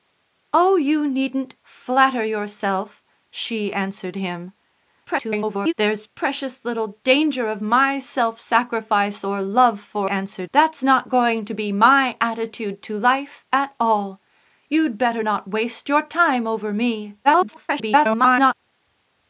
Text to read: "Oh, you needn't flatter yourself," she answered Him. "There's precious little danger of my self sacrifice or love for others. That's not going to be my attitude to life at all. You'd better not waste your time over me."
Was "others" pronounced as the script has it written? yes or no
no